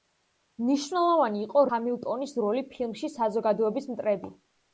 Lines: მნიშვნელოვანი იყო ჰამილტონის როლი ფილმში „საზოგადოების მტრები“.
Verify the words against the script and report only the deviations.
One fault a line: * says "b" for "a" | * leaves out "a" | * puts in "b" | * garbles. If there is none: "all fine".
all fine